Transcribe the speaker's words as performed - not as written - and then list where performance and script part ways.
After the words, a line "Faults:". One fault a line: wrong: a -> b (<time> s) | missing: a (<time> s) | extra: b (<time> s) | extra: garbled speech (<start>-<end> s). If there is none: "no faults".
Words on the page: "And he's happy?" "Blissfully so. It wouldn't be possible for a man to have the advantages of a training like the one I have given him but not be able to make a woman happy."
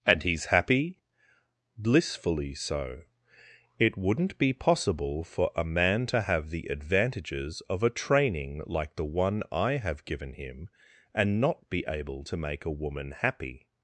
"And he's happy?" "Blissfully so. It wouldn't be possible for a man to have the advantages of a training like the one I have given him and not be able to make a woman happy."
Faults:
wrong: but -> and (11.1 s)